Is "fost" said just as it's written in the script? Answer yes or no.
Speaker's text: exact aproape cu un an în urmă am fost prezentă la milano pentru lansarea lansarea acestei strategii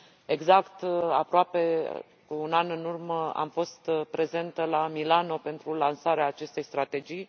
yes